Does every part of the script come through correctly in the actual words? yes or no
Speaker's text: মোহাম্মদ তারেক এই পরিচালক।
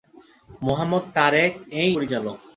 yes